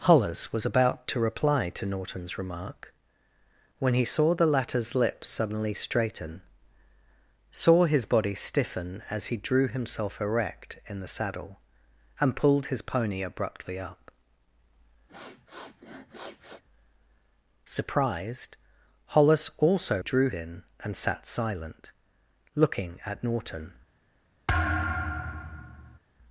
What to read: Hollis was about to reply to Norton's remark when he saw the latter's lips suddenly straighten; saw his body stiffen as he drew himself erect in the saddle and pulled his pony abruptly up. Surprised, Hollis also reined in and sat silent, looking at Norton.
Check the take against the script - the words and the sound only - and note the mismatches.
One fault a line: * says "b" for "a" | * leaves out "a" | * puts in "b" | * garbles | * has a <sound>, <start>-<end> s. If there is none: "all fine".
* has a sniff, 15.1-16.6 s
* says "drew" for "reined"
* has a thud, 24.5-26.0 s